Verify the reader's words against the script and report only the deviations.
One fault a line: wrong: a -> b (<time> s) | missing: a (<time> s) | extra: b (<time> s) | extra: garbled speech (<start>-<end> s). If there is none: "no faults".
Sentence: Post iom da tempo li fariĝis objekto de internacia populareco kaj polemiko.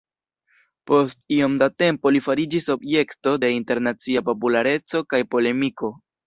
no faults